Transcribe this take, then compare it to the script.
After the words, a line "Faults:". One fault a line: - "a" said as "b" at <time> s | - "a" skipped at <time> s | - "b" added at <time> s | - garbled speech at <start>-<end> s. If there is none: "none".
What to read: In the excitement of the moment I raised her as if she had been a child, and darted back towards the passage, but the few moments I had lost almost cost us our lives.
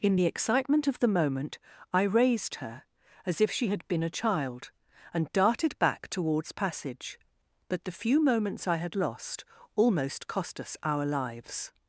In the excitement of the moment I raised her as if she had been a child, and darted back towards passage, but the few moments I had lost almost cost us our lives.
Faults:
- "the" skipped at 6.5 s